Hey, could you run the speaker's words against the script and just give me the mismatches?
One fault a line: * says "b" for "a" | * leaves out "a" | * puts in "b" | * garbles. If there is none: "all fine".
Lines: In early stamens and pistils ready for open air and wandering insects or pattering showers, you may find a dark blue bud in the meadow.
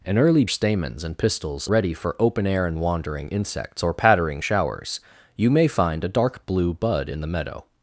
all fine